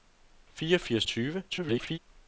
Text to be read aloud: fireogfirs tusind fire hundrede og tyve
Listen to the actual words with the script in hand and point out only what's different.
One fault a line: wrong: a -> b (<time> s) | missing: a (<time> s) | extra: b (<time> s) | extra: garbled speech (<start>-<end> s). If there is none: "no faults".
missing: tusind fire hundrede (1.1 s)
extra: garbled speech (1.5-2.0 s)